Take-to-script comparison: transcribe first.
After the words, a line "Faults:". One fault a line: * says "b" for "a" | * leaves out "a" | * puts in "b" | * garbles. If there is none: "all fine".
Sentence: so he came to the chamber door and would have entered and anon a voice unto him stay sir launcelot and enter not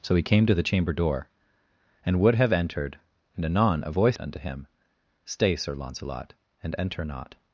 so he came to the chamber door and would have entered and anon a voice unto him stay sir launcelot and enter not
Faults:
all fine